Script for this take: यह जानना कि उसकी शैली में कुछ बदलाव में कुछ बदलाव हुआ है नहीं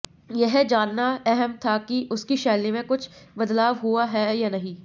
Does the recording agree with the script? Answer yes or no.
no